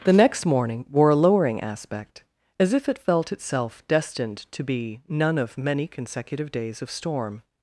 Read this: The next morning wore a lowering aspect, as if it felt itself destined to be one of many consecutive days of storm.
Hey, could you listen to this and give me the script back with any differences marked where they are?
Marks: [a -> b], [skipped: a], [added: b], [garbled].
The next morning wore a lowering aspect, as if it felt itself destined to be [one -> none] of many consecutive days of storm.